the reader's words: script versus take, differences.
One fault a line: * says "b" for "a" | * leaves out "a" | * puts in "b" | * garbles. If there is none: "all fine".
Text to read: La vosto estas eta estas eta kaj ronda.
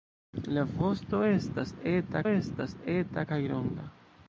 all fine